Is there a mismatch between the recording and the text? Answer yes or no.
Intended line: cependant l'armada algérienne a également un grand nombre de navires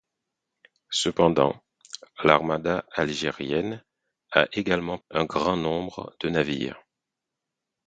no